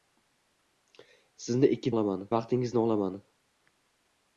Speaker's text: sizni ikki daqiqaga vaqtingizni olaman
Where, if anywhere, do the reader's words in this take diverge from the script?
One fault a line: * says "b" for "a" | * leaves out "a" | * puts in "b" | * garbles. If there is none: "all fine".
* says "olaman" for "daqiqaga"